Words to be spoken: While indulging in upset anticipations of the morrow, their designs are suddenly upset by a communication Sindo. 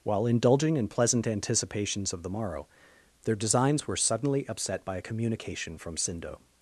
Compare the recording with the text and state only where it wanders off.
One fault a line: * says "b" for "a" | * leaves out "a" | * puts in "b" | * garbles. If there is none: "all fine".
* says "pleasant" for "upset"
* says "were" for "are"
* puts in "from"